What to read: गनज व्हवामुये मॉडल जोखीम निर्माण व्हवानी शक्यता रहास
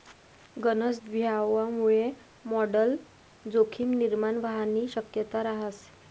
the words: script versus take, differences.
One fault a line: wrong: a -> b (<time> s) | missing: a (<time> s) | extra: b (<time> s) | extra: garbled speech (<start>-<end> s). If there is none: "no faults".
no faults